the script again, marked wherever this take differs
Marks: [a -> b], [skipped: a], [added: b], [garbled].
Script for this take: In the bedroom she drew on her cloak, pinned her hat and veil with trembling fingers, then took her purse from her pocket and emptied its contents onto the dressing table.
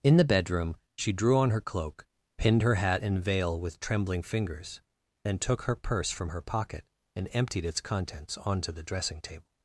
In the bedroom she drew on her cloak, pinned her hat and veil with trembling fingers, then took her purse from her pocket and emptied its contents onto the dressing table.